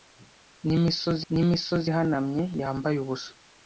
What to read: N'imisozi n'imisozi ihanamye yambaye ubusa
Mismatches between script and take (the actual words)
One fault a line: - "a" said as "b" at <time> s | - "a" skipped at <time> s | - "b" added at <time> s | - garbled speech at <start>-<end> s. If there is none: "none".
none